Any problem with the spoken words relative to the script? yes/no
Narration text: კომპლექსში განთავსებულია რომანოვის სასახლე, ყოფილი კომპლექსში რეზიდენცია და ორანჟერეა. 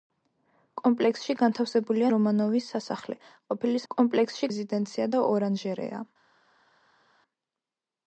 no